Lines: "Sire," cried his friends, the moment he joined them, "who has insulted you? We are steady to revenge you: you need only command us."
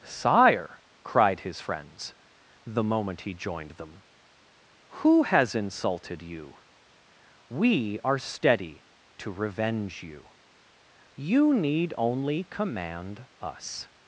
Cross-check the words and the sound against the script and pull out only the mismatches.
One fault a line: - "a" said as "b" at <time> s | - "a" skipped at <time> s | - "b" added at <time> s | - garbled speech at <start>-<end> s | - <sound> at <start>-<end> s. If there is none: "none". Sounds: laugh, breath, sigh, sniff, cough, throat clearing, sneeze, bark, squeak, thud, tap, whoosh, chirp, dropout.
none